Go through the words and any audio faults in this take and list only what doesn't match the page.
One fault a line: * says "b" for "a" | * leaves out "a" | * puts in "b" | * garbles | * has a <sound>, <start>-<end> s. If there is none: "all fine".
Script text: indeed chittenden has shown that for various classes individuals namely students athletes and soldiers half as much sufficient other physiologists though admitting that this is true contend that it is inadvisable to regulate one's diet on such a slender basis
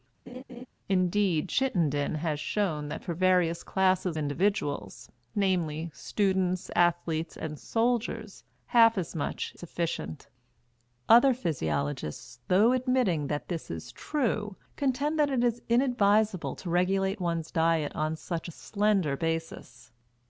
* has a laugh, 0.3-0.7 s